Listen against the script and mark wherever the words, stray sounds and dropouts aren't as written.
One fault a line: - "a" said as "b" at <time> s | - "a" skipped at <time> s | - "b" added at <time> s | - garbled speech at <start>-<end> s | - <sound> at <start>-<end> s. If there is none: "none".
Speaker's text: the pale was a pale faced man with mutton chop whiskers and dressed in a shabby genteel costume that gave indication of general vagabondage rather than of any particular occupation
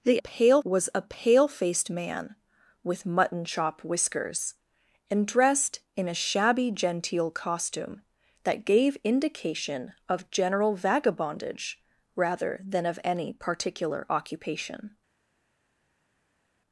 none